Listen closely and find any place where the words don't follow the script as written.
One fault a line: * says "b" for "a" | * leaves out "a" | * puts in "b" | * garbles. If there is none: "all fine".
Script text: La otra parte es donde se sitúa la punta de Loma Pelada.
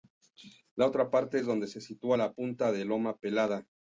all fine